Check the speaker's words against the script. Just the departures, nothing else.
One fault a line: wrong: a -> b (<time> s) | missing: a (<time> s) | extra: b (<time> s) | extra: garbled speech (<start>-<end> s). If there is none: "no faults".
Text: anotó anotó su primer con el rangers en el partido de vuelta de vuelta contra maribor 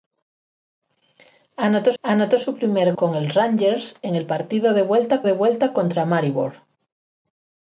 no faults